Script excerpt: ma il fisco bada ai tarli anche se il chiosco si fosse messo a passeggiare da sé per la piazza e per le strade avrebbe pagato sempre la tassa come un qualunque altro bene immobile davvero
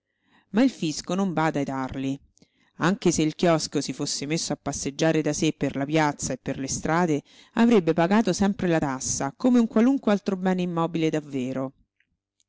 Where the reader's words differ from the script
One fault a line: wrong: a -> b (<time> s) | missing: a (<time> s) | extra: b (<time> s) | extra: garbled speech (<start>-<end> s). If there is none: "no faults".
extra: non (1.1 s)